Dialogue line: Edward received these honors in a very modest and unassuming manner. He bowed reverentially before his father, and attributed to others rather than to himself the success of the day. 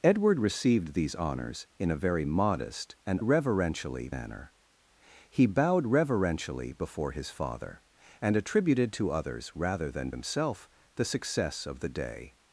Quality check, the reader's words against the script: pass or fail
fail